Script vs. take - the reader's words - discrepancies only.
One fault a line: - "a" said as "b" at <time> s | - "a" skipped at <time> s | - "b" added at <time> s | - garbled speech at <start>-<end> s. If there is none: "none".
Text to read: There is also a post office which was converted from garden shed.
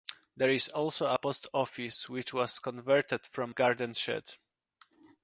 none